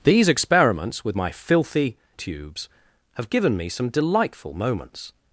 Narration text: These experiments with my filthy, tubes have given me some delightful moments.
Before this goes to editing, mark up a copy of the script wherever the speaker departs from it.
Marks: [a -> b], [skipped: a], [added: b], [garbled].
These experiments with my filthy, tubes have given me some delightful moments.